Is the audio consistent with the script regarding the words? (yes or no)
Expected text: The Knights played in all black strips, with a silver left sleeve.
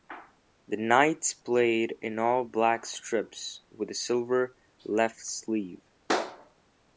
yes